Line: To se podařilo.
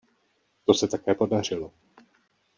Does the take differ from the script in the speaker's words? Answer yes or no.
yes